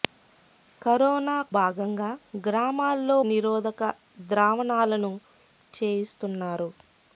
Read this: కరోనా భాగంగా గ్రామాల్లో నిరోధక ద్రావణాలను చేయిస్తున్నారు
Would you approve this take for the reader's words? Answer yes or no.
yes